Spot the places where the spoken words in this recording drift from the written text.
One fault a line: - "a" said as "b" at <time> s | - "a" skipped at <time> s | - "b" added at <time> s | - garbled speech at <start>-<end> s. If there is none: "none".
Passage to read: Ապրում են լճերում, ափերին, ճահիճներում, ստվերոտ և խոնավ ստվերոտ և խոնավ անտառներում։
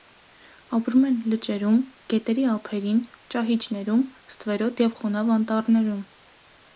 - "գետերի" added at 2.1 s
- "ստվերոտ և խոնավ" skipped at 5.3 s